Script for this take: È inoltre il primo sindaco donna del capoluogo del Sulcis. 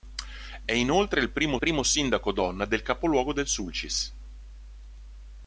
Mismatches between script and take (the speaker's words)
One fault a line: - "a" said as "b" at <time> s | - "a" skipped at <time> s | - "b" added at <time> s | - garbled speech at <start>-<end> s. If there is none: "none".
- "primo" added at 1.6 s